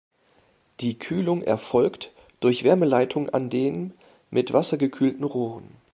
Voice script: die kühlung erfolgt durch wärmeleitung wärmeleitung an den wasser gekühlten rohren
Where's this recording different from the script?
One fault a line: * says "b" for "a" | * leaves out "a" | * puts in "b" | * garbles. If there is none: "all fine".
* leaves out "wärmeleitung"
* puts in "mit"